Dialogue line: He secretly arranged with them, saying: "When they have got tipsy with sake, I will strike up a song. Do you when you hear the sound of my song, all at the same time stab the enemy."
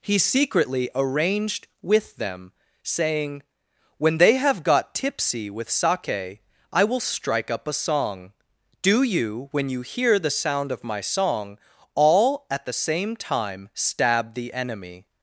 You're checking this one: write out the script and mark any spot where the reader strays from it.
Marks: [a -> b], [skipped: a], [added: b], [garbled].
He secretly arranged with them, saying: "When they have got tipsy with sake, I will strike up a song. Do you when you hear the sound of my song, all at the same time stab the enemy."